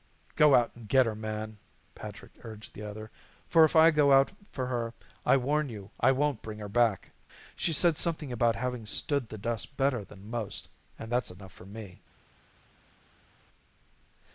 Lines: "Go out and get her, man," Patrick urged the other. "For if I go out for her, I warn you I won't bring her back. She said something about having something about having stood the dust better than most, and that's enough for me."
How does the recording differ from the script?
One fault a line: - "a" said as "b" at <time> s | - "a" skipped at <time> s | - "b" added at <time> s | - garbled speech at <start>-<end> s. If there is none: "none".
- "something about having" skipped at 8.9 s